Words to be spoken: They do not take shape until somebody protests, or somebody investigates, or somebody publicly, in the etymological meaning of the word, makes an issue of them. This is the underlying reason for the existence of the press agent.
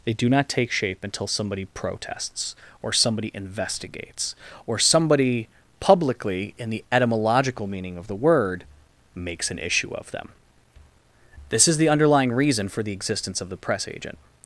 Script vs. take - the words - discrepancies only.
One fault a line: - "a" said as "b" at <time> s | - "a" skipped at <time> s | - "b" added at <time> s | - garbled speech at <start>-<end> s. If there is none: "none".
none